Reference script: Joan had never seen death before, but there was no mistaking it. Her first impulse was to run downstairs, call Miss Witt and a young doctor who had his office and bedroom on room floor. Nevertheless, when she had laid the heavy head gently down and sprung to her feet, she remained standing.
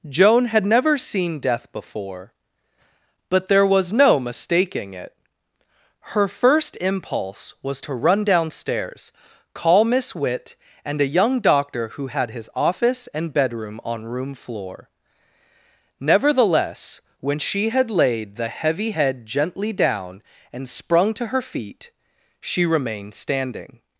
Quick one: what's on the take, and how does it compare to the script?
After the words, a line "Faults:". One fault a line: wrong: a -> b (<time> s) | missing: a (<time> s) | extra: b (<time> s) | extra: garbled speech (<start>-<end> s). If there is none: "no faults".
Joan had never seen death before, but there was no mistaking it. Her first impulse was to run downstairs, call Miss Witt and a young doctor who had his office and bedroom on room floor. Nevertheless, when she had laid the heavy head gently down and sprung to her feet, she remained standing.
Faults:
no faults